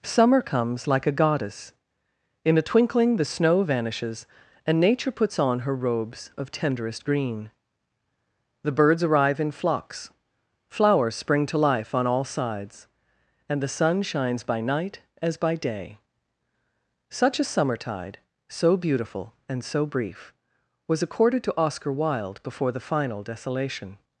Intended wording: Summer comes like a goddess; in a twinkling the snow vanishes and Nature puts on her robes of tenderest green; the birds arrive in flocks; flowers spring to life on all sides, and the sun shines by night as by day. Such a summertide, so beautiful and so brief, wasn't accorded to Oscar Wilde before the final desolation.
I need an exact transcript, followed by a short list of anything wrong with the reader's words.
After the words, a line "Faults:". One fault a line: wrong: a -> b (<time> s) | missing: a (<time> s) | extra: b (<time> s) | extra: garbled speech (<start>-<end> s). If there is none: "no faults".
Summer comes like a goddess; in a twinkling the snow vanishes and Nature puts on her robes of tenderest green; the birds arrive in flocks; flowers spring to life on all sides, and the sun shines by night as by day. Such a summertide, so beautiful and so brief, was accorded to Oscar Wilde before the final desolation.
Faults:
wrong: wasn't -> was (20.9 s)